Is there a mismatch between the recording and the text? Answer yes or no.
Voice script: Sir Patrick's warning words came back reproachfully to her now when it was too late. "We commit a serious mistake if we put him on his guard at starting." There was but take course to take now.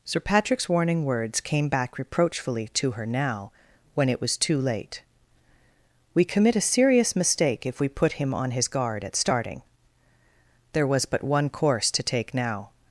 yes